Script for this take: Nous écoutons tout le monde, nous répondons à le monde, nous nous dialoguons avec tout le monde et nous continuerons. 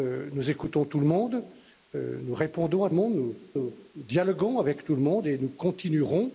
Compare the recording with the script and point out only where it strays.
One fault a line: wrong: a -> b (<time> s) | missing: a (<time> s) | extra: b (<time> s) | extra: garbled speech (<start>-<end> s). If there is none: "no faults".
no faults